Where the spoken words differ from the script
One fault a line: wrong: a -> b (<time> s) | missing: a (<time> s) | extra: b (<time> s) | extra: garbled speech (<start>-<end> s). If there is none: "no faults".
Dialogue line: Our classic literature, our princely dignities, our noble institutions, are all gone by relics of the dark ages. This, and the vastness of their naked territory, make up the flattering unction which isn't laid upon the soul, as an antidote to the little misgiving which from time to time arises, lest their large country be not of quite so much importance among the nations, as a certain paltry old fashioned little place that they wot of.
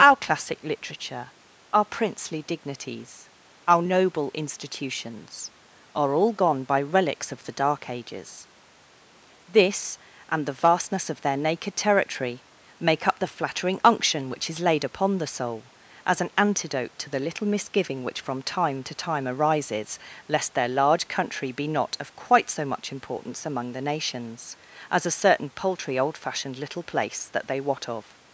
wrong: isn't -> is (14.5 s)